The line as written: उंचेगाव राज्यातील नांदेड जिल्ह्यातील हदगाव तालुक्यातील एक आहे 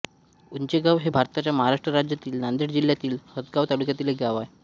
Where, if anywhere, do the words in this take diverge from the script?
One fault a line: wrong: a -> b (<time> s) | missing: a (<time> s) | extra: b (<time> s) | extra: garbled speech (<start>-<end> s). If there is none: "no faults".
extra: हे भारताच्या महाराष्ट्र (1.0 s)
extra: गाव (4.2 s)